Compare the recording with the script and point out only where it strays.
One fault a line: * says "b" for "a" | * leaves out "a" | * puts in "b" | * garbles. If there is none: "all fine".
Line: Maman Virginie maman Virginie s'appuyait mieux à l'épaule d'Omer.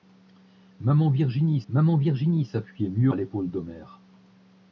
all fine